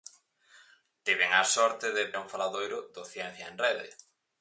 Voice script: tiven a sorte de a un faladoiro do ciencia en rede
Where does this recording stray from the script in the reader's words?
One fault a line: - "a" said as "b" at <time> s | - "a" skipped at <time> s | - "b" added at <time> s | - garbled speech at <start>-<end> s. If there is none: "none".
none